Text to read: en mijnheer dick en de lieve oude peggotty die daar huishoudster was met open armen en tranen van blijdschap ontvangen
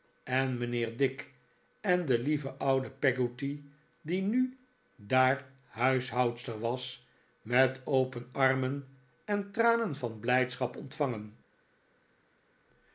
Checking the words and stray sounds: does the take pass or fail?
fail